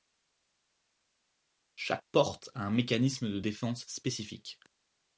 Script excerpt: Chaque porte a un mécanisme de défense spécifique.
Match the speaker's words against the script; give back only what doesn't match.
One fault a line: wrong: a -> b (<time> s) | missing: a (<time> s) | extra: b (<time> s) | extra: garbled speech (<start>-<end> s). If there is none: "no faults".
no faults